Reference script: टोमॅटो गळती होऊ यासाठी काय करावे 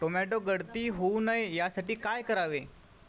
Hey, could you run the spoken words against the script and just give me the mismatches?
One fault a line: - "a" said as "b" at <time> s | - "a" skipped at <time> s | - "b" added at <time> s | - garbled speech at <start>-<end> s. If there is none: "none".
- "नये" added at 1.2 s